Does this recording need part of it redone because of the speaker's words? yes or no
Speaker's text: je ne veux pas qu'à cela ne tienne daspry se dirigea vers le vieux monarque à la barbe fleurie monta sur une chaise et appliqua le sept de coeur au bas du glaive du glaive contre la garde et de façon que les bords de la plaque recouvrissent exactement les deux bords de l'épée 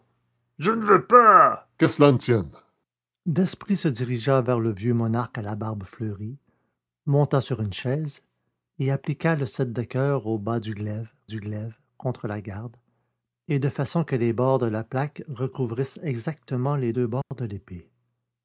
no